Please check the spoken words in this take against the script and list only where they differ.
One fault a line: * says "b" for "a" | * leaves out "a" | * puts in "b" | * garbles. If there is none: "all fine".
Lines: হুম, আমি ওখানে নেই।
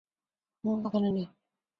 * leaves out "আমি"